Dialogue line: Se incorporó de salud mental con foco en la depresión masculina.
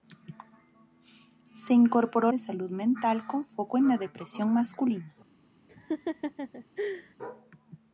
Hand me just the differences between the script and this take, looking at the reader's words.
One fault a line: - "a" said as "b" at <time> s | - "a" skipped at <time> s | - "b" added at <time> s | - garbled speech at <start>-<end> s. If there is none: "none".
none